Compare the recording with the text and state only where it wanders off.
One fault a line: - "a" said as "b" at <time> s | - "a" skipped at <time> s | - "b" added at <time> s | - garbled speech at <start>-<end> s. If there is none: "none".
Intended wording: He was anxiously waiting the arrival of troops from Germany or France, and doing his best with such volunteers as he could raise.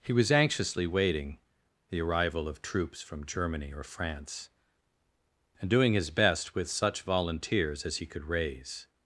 none